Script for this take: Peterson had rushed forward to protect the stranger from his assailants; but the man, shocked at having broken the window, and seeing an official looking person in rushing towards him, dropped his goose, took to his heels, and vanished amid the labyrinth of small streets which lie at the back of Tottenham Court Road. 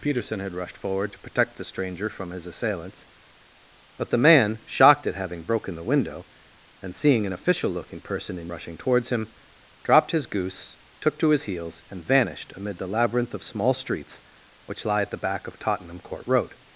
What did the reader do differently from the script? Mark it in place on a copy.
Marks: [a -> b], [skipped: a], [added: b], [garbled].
Peterson had rushed forward to protect the stranger from his assailants; but the man, shocked at having broken the window, and seeing an official looking person in rushing towards him, dropped his goose, took to his heels, and vanished amid the labyrinth of small streets which lie at the back of Tottenham Court Road.